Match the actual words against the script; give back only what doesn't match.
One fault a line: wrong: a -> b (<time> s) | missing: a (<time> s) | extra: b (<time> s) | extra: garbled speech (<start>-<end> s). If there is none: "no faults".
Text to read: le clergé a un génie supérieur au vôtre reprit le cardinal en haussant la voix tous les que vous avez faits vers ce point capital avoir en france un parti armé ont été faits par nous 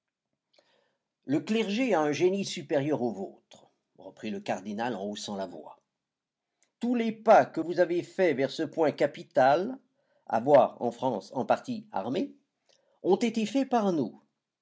extra: pas (7.1 s)